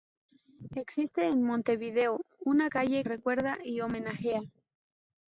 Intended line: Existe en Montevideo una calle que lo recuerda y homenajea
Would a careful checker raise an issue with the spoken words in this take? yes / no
yes